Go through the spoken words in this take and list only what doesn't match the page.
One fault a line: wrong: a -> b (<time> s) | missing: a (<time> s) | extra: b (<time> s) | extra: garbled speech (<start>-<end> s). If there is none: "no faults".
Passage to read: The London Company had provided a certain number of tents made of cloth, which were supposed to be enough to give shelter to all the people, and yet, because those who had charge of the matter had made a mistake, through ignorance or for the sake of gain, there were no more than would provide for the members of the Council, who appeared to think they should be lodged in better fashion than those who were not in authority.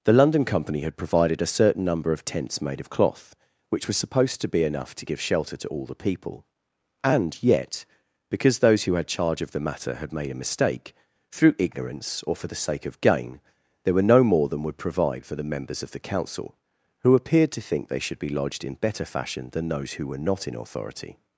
wrong: were -> was (3.9 s)